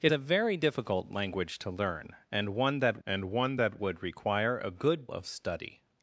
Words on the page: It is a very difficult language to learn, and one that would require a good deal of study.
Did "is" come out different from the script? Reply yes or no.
yes